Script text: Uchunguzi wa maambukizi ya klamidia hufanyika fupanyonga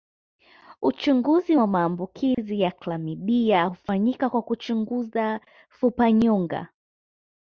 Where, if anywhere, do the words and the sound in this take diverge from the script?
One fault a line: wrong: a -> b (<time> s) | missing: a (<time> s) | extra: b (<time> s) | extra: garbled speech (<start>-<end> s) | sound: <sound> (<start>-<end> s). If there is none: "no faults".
sound: dropout (2.3-2.4 s)
extra: kwa kuchunguza (4.3 s)